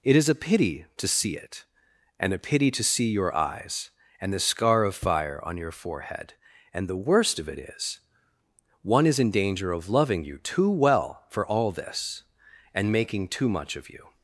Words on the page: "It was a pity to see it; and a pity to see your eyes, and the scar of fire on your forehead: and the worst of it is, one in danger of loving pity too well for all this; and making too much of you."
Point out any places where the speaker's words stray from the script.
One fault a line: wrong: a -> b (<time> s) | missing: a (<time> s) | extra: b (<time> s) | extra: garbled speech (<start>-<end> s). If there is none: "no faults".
wrong: was -> is (0.1 s)
extra: is (9.1 s)
wrong: pity -> you (10.2 s)